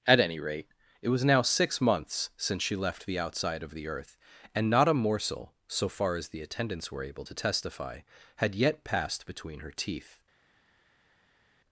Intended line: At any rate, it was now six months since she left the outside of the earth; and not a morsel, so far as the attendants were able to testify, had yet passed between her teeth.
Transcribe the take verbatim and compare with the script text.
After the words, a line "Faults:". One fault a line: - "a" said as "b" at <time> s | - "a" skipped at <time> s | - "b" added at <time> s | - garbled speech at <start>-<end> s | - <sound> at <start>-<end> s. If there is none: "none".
At any rate, it was now six months since she left the outside of the earth; and not a morsel, so far as the attendants were able to testify, had yet passed between her teeth.
Faults:
none